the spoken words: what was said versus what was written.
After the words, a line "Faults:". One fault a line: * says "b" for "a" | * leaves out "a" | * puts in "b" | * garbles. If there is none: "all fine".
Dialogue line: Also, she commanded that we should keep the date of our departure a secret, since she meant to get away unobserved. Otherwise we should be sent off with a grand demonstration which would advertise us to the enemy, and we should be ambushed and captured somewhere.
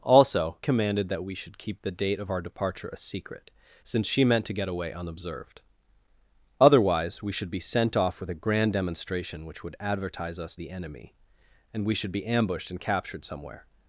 Also, commanded that we should keep the date of our departure a secret, since she meant to get away unobserved. Otherwise we should be sent off with a grand demonstration which would advertise us the enemy, and we should be ambushed and captured somewhere.
Faults:
* leaves out "she"
* leaves out "to"